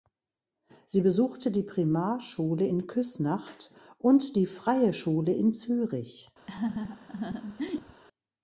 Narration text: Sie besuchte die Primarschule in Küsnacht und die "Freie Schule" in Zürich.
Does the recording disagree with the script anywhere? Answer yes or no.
no